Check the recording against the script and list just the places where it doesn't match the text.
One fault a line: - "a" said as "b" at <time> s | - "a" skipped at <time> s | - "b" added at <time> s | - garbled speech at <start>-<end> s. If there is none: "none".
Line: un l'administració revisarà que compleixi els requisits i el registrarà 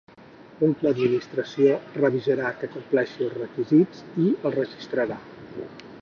none